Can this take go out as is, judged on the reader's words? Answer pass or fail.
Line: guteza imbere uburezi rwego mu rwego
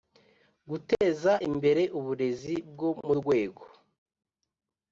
fail